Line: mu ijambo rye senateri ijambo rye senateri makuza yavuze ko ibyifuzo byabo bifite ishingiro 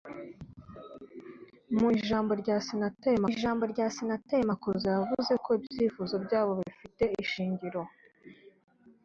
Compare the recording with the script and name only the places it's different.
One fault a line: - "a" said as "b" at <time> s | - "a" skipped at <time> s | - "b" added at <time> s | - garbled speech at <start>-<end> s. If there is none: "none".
none